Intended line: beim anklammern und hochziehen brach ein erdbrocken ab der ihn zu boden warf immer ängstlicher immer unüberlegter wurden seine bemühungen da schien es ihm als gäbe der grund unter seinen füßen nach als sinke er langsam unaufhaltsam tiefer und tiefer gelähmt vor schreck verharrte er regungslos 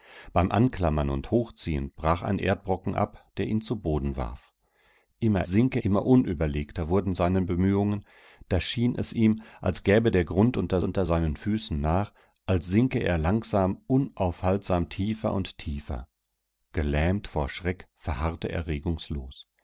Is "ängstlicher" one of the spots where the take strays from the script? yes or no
yes